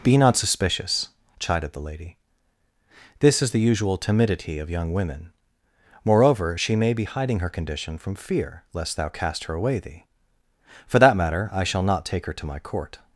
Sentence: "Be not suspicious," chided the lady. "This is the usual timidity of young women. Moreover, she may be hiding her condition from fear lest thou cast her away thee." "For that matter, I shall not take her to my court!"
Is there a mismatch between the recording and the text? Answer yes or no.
no